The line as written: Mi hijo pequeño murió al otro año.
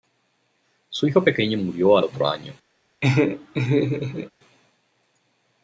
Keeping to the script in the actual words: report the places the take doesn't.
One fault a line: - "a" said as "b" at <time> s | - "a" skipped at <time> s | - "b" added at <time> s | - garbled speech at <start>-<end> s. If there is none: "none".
- "Mi" said as "Su" at 0.9 s